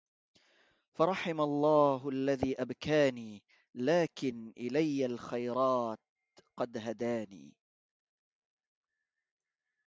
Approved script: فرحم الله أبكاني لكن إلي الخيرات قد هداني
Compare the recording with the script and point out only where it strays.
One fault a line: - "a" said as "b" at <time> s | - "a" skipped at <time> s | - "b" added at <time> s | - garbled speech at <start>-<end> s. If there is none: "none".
- "الذي" added at 2.1 s